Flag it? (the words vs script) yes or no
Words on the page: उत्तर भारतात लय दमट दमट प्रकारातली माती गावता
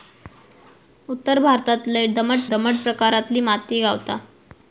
no